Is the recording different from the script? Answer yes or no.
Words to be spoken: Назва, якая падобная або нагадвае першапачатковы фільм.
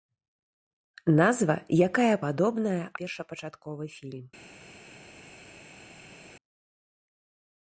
yes